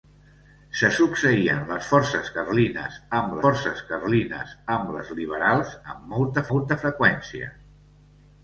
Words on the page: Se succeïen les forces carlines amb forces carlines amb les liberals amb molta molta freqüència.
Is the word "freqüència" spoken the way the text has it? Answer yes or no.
yes